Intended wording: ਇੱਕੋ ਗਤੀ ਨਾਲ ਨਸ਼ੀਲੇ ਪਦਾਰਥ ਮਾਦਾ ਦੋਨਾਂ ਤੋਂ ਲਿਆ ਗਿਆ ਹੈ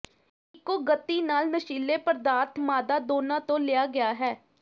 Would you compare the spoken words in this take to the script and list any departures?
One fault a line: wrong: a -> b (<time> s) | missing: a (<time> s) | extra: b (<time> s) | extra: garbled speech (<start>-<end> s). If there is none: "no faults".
no faults